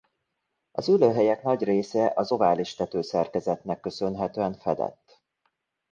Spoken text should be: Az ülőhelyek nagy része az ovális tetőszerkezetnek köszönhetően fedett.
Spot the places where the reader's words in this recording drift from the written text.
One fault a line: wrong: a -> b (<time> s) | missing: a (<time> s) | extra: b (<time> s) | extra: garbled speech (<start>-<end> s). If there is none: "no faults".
no faults